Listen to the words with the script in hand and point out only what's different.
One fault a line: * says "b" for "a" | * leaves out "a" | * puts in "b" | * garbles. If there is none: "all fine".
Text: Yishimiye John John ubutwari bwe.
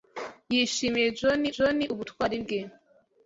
all fine